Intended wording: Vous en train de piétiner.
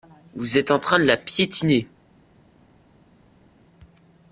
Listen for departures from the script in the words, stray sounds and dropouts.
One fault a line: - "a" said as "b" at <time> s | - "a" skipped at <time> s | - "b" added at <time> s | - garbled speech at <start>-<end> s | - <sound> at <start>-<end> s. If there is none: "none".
- "êtes" added at 0.6 s
- "la" added at 1.0 s